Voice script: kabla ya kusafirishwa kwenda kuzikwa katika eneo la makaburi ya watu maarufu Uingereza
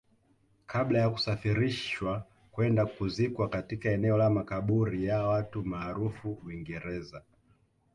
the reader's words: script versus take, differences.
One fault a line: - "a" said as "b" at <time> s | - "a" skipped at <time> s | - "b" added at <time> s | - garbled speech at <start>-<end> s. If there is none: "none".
none